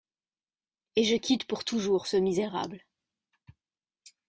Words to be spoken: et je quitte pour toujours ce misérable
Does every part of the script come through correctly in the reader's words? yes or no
yes